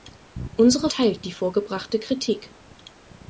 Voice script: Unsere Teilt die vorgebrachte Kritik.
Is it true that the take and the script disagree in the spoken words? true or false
false